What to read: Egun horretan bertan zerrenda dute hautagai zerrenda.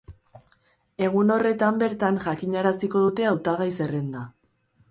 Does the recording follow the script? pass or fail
fail